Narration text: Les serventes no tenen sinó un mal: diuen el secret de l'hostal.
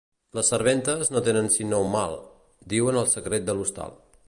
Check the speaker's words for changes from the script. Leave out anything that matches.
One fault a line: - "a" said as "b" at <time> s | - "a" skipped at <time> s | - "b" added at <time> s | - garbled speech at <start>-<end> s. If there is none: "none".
none